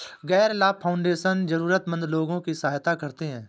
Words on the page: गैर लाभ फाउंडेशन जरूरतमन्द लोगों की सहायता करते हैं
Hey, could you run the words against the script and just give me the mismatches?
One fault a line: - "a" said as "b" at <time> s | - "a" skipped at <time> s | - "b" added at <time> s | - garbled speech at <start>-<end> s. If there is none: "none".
none